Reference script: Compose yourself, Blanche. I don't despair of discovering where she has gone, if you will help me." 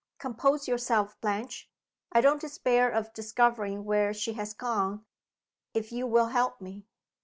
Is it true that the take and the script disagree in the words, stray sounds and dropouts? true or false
false